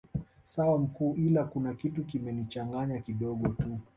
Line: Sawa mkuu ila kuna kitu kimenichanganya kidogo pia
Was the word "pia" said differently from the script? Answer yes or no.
yes